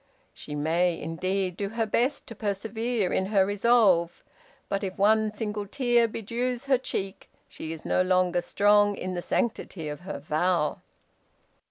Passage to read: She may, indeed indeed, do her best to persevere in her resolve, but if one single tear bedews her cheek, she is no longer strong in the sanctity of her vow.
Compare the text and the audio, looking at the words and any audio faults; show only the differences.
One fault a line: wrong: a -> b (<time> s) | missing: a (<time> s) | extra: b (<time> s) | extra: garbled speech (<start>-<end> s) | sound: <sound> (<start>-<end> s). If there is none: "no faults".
missing: indeed (1.6 s)